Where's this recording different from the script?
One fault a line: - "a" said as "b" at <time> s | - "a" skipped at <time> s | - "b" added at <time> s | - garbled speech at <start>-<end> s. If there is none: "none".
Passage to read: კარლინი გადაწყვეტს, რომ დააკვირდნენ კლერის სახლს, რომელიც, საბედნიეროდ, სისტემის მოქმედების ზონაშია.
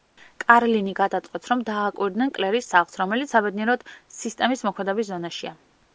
none